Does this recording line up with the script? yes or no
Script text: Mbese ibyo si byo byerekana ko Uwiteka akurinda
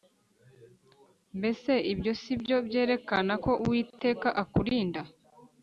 yes